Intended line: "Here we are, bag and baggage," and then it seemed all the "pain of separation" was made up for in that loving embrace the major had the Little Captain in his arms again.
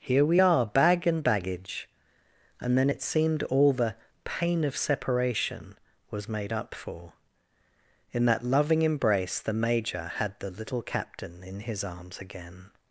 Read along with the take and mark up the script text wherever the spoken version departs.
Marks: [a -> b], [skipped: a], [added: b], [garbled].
"Here we are, bag and baggage," and then it seemed all the "pain of separation" was made up for in that loving embrace the major had the Little Captain in his arms again.